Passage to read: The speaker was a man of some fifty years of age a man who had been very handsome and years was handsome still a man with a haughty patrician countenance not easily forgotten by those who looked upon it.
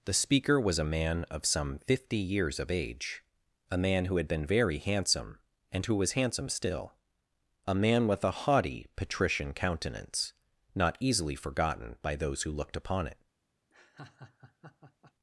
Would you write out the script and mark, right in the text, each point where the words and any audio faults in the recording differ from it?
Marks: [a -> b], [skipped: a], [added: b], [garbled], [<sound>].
The speaker was a man of some fifty years of age a man who had been very handsome and [years -> who] was handsome still a man with a haughty patrician countenance not easily forgotten by those who looked upon it. [laugh]